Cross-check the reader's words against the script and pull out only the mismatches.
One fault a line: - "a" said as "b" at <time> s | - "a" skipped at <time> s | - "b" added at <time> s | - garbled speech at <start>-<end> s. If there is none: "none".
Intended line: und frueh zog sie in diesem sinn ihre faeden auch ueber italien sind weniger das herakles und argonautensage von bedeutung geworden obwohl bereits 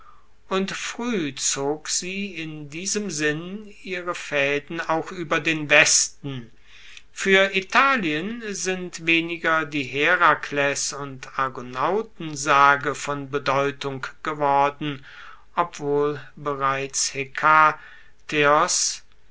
- "den westen fuer" added at 5.4 s
- "das" said as "die" at 9.6 s